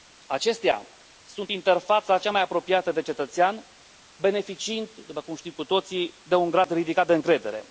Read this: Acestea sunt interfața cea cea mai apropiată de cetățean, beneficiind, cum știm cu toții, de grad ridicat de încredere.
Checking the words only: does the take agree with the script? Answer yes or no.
no